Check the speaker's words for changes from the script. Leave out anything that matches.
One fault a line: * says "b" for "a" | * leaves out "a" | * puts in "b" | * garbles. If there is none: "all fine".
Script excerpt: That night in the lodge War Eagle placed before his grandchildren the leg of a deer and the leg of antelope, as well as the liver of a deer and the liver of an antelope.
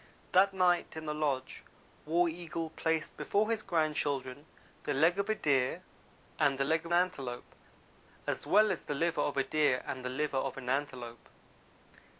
all fine